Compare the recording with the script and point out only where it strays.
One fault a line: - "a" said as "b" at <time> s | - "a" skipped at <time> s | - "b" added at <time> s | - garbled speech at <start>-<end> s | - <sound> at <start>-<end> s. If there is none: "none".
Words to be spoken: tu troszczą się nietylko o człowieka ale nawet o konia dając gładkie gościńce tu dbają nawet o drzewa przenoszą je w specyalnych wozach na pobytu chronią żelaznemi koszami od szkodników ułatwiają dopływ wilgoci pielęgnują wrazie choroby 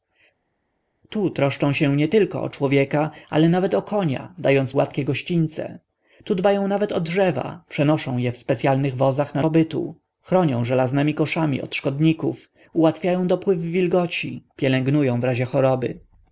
none